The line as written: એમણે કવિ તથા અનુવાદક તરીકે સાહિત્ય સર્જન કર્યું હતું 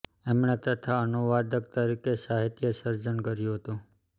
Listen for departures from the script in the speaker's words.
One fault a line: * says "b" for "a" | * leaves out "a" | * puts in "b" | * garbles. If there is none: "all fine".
* leaves out "કવિ"